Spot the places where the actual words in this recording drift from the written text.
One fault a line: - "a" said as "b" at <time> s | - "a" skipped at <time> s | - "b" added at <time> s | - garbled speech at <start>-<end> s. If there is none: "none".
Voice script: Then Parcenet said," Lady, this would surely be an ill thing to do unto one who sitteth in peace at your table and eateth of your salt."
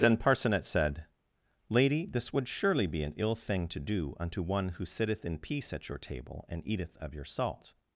none